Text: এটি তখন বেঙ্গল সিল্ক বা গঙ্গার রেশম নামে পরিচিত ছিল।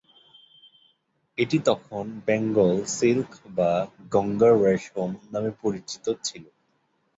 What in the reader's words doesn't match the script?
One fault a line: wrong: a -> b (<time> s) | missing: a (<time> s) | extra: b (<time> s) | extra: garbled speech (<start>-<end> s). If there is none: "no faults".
no faults